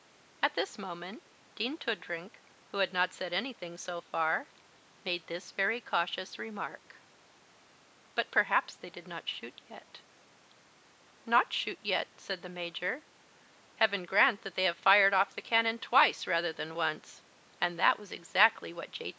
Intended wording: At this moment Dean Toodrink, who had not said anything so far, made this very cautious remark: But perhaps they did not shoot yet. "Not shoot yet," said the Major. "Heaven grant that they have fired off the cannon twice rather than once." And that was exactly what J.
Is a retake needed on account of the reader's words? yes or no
no